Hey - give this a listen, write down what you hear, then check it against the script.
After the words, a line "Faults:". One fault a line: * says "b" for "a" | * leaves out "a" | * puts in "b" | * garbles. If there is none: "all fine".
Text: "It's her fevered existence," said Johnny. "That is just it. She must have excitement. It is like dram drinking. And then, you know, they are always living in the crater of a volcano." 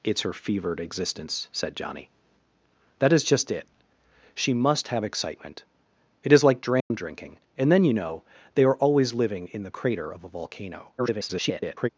"It's her fevered existence," said Johnny. "That is just it. She must have excitement. It is like dram drinking. And then, you know, they are always living in the crater of a volcano." [garbled]
Faults:
* garbles